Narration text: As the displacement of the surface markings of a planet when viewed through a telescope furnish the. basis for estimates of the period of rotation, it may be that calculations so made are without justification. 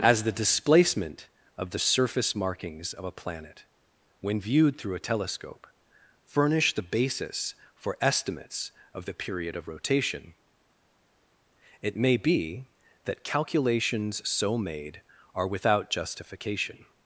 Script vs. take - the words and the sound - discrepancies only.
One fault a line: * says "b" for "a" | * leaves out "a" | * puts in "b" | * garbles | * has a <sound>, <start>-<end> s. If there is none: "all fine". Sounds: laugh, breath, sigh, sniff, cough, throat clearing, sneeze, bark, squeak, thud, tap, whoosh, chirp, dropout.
all fine